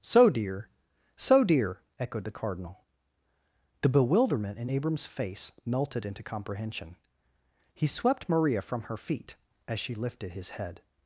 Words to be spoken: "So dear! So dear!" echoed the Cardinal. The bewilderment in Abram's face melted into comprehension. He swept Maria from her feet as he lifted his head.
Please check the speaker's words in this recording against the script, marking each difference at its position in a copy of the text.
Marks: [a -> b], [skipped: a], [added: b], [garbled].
"So dear! So dear!" echoed the Cardinal. The bewilderment in Abram's face melted into comprehension. He swept Maria from her feet as [he -> she] lifted his head.